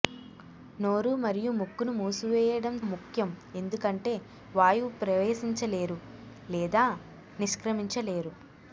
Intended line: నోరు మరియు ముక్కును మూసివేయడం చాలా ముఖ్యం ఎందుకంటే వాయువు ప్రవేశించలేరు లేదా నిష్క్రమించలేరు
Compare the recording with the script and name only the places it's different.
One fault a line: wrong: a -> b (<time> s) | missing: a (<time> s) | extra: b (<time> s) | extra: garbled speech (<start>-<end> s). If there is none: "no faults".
missing: చాలా (2.8 s)